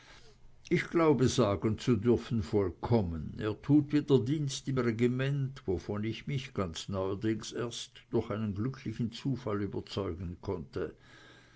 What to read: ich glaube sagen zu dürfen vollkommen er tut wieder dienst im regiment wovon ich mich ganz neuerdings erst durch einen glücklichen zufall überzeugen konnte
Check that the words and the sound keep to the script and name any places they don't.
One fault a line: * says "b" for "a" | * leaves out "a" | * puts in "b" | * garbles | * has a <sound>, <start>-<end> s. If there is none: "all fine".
all fine